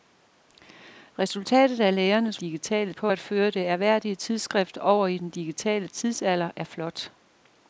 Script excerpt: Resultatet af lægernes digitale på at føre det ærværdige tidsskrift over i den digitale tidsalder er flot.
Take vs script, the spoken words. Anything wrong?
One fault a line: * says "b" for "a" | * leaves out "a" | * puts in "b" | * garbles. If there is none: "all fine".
all fine